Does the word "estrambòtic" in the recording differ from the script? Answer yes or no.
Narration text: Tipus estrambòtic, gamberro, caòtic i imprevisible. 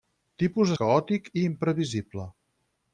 yes